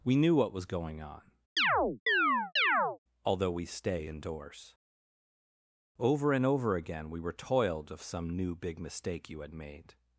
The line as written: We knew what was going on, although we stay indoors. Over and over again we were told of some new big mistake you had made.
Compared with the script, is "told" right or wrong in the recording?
wrong